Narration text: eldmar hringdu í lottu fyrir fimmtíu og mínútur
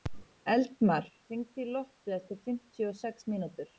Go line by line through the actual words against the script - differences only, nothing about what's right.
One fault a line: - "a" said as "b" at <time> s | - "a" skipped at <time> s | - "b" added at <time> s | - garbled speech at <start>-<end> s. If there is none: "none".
- "fyrir" said as "eftir" at 2.2 s
- "sex" added at 3.0 s